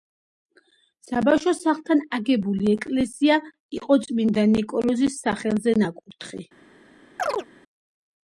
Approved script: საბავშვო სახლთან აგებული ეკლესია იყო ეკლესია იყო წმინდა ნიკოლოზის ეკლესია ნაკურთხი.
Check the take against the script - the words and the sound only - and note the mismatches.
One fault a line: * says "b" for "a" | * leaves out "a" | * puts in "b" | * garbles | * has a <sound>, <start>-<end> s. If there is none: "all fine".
* leaves out "ეკლესია იყო"
* says "სახელზე" for "ეკლესია"
* has a chirp, 7.2-7.5 s